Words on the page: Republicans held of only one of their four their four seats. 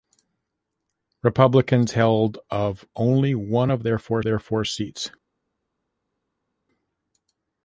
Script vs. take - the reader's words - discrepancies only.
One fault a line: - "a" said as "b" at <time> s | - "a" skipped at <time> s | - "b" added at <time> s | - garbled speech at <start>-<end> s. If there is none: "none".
none